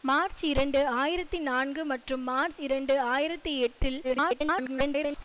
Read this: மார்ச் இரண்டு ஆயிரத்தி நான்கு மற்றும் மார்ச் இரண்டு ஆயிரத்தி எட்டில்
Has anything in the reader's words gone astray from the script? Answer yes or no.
yes